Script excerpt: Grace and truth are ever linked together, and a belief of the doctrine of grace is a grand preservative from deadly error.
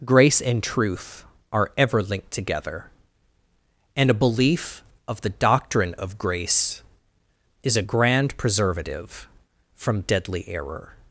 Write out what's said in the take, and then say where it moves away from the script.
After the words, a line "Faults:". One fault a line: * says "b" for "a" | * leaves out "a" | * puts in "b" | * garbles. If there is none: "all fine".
Grace and truth are ever linked together, and a belief of the doctrine of grace is a grand preservative from deadly error.
Faults:
all fine